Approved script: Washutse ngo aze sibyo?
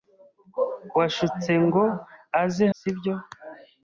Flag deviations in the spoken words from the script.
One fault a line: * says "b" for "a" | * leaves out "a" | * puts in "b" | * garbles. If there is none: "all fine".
all fine